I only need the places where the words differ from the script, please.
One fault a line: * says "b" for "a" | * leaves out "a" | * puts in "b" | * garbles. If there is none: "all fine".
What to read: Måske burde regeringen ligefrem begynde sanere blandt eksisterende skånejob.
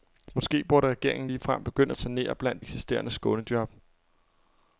all fine